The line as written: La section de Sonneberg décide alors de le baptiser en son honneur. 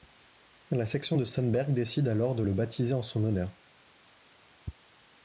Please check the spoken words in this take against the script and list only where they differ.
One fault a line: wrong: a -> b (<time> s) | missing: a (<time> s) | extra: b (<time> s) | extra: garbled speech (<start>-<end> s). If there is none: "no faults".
no faults